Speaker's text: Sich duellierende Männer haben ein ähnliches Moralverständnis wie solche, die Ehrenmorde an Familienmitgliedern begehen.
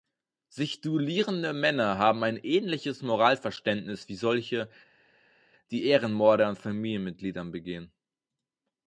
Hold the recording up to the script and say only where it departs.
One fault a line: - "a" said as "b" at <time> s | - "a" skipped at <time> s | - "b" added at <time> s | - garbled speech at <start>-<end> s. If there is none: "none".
none